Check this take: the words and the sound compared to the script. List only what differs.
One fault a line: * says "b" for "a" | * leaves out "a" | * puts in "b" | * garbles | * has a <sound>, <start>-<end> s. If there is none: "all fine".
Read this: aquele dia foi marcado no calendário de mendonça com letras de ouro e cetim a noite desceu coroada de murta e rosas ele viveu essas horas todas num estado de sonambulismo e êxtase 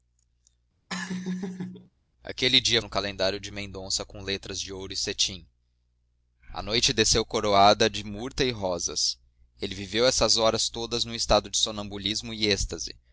* has a laugh, 0.9-1.9 s
* leaves out "foi marcado"